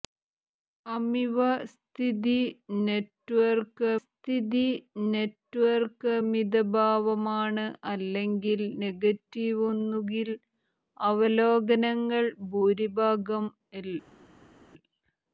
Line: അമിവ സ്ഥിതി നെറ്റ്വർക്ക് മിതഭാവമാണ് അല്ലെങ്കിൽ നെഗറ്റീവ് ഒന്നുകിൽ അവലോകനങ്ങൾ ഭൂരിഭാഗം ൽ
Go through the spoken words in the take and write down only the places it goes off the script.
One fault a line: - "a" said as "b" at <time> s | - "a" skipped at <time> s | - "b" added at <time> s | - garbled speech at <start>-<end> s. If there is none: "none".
- "സ്ഥിതി നെറ്റ്വർക്ക്" added at 4.0 s